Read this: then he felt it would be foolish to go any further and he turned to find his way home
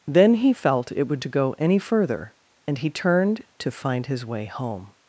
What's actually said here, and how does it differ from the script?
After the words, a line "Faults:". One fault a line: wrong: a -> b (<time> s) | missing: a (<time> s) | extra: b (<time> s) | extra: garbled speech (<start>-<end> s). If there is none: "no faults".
then he felt it would to go any further and he turned to find his way home
Faults:
missing: be foolish (1.2 s)